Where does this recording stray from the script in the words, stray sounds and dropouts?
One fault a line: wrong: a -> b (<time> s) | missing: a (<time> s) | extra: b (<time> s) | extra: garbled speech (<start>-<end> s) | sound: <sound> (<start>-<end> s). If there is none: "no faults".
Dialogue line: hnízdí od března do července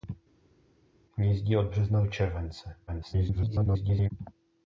extra: garbled speech (2.9-4.1 s)